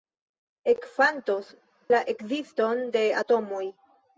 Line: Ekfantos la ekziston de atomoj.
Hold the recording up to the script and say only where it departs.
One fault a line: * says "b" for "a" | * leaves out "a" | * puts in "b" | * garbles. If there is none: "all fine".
all fine